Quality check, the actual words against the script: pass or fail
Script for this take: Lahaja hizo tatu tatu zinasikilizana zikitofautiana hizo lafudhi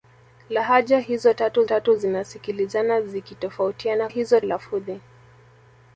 pass